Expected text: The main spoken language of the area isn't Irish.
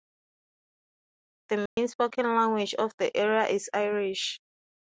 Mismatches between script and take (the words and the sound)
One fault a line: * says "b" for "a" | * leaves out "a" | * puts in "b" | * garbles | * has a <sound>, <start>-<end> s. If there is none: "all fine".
* has a dropout, 1.7-1.8 s
* says "is" for "isn't"